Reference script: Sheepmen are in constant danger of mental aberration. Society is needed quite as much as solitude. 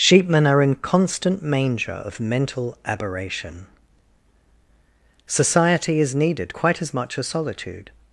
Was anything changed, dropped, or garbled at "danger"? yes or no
yes